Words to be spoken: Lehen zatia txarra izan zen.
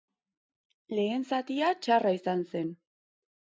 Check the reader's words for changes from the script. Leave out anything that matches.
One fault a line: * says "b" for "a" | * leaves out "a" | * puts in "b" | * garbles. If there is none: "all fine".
all fine